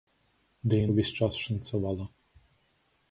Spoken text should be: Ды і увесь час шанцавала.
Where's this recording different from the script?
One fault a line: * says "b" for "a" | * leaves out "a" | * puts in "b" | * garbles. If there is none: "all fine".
all fine